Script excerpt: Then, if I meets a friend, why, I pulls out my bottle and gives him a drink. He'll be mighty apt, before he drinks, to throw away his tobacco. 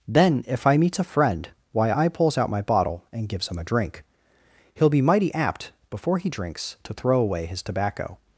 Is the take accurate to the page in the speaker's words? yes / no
yes